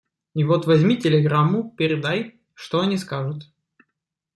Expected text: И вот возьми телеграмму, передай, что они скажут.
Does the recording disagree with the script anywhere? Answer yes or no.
no